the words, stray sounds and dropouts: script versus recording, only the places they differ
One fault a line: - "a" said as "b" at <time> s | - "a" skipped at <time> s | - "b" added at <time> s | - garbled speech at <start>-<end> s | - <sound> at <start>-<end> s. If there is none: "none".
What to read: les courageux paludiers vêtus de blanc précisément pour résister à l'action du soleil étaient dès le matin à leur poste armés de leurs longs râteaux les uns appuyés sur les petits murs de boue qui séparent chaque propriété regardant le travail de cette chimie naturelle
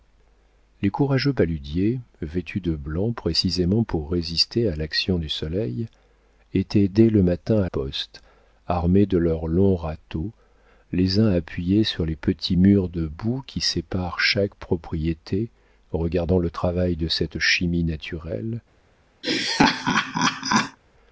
- "leur" skipped at 7.7 s
- laugh at 19.2-20.8 s